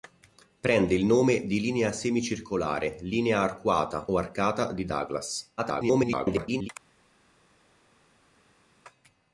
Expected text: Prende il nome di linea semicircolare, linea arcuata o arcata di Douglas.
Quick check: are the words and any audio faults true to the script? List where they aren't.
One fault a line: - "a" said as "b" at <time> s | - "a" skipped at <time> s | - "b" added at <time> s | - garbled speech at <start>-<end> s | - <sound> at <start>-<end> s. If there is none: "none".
- garbled speech at 5.6-6.7 s